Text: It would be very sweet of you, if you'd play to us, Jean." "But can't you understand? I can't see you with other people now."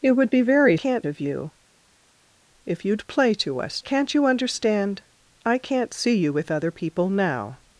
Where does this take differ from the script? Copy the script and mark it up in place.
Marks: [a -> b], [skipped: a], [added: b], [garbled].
It would be very [sweet -> can't] of you, if you'd play to us, [skipped: Jean." "But] can't you understand? I can't see you with other people now."